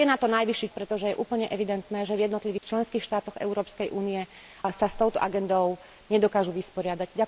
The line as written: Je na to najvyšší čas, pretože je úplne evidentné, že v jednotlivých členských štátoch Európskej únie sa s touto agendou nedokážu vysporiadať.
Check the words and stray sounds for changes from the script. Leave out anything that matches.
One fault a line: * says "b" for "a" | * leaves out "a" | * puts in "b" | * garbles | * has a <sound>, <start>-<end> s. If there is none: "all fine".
* leaves out "čas"
* has a dropout, 2.6-2.6 s